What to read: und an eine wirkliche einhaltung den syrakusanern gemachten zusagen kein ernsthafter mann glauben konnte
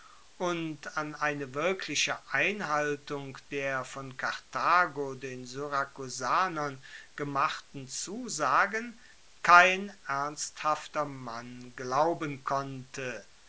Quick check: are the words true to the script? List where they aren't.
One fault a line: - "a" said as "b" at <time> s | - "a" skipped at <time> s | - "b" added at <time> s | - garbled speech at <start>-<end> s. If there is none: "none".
- "der von karthago" added at 3.5 s